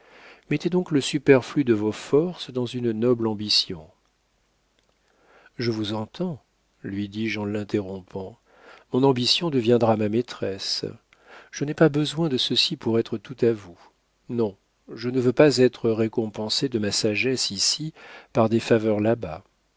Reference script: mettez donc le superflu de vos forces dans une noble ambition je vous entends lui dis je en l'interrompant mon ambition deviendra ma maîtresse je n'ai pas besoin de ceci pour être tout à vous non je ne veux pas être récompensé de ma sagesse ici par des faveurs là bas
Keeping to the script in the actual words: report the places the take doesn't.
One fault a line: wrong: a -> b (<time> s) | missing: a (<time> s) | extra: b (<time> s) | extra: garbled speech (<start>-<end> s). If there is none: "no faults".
no faults